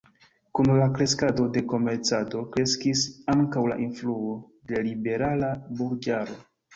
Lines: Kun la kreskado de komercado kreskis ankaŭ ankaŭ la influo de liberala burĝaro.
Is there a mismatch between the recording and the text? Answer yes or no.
yes